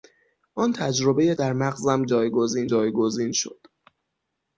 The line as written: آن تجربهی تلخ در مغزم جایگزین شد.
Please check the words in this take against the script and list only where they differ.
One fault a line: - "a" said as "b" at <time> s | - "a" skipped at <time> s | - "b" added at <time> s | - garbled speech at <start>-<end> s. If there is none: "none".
- "تلخ" skipped at 1.4 s
- "جایگزین" added at 2.7 s